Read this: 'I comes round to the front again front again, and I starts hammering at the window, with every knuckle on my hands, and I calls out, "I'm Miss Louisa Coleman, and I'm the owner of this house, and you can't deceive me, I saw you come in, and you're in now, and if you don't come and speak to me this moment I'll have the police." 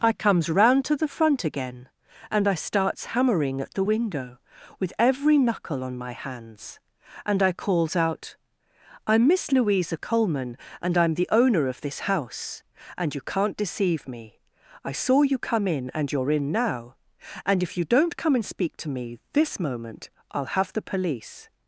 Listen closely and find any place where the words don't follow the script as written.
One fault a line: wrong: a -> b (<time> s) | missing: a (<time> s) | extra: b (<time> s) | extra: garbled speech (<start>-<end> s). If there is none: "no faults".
missing: front again (1.9 s)